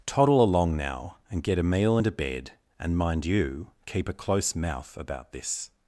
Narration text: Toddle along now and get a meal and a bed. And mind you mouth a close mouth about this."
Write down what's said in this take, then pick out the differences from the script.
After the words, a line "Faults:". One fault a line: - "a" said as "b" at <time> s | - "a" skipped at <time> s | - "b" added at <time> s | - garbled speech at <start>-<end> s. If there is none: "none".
Toddle along now and get a meal and a bed. And mind you keep a close mouth about this."
Faults:
- "mouth" said as "keep" at 3.8 s